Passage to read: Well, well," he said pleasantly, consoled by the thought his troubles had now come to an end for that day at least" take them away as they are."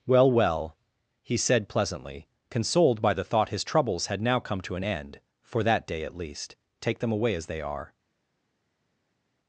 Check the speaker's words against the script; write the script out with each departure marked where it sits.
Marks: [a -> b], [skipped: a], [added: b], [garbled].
Well, well," he said pleasantly, consoled by the thought his troubles had now come to an end for that day at least" take them away as they are."